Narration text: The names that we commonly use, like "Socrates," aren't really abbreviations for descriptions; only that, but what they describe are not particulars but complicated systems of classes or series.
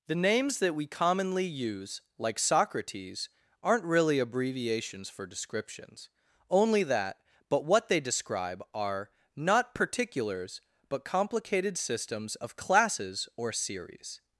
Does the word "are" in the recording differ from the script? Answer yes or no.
no